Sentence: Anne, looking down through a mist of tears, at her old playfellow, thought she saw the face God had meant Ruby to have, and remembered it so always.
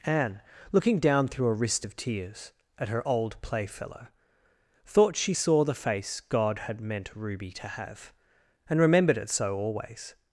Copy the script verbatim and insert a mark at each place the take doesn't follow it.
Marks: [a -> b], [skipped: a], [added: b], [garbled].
Anne, looking down through a [mist -> wrist] of tears, at her old playfellow, thought she saw the face God had meant Ruby to have, and remembered it so always.